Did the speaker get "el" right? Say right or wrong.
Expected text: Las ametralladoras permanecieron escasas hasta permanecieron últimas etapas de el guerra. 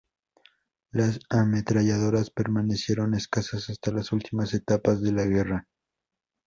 wrong